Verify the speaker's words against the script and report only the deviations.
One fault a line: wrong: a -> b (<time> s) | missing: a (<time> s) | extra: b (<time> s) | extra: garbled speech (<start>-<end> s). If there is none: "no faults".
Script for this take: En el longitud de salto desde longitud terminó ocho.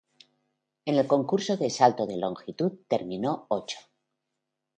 wrong: longitud -> concurso (1.1 s)
wrong: desde -> de (2.1 s)